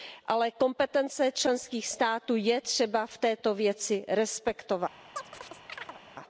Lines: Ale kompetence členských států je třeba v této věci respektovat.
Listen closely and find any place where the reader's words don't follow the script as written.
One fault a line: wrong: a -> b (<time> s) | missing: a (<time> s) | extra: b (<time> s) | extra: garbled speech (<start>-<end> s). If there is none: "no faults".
no faults